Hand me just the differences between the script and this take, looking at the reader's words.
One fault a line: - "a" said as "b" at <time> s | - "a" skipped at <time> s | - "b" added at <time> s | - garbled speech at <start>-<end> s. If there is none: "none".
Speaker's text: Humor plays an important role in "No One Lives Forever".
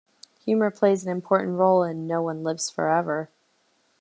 none